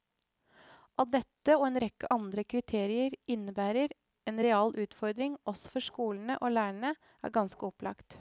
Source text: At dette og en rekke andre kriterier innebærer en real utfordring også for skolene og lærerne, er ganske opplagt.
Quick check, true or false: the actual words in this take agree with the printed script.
true